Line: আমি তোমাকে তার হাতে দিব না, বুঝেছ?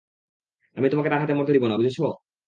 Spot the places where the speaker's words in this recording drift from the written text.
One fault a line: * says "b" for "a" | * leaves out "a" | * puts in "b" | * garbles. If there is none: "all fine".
* puts in "মরতে"